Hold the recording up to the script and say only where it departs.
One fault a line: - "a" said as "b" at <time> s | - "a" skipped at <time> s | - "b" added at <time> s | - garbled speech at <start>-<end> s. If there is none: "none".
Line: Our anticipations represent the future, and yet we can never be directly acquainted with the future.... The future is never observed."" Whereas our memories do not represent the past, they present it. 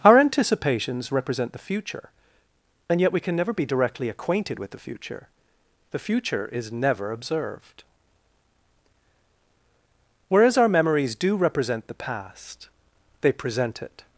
- "not" skipped at 11.3 s